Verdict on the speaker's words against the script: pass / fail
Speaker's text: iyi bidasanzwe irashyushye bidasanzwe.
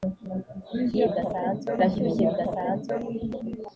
pass